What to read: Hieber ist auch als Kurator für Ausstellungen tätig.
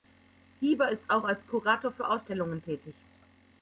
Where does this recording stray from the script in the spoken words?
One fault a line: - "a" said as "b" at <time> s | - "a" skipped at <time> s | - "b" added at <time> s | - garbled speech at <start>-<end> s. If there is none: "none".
none